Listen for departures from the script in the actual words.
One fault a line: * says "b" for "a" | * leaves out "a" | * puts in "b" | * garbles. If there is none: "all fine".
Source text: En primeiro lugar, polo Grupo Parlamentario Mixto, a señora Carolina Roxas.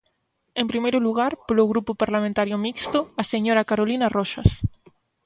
all fine